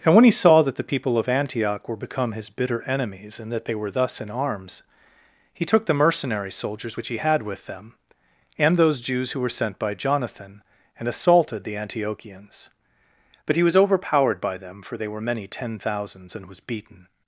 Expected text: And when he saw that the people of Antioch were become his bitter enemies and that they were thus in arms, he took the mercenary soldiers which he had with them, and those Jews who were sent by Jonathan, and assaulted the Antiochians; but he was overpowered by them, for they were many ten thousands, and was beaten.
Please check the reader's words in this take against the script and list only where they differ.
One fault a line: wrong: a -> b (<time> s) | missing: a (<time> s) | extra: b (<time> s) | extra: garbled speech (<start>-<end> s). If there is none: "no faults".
no faults